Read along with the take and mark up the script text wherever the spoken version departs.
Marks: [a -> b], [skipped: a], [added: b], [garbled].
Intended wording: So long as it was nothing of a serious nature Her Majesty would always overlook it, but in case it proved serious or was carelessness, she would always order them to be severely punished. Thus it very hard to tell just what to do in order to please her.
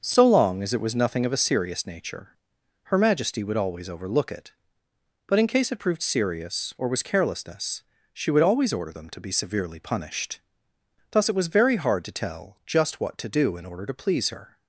So long as it was nothing of a serious nature Her Majesty would always overlook it, but in case it proved serious or was carelessness, she would always order them to be severely punished. Thus it [added: was] very hard to tell just what to do in order to please her.